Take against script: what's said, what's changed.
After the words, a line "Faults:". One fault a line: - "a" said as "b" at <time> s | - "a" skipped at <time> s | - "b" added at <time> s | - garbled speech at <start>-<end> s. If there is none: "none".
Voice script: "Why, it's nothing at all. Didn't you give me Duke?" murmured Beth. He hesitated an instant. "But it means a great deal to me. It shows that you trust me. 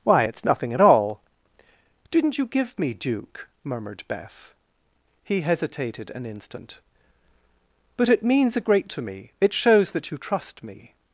"Why, it's nothing at all. Didn't you give me Duke?" murmured Beth. He hesitated an instant. "But it means a great to me. It shows that you trust me.
Faults:
- "deal" skipped at 8.9 s